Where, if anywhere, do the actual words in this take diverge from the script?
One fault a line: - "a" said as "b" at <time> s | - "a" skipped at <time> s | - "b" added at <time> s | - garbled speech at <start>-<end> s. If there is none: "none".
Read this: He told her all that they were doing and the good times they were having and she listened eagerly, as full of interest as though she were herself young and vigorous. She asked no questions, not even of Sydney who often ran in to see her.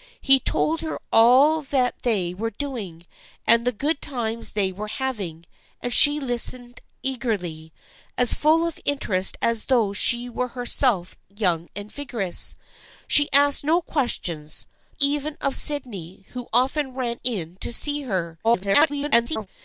- "not" skipped at 14.6 s
- garbled speech at 18.4-19.5 s